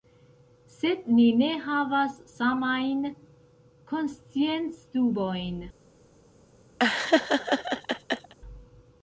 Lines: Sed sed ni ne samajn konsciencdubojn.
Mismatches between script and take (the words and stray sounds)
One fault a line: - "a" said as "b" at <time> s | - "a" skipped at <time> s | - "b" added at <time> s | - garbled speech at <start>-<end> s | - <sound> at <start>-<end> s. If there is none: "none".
- "sed" skipped at 1.0 s
- "havas" added at 1.6 s
- laugh at 6.8-8.3 s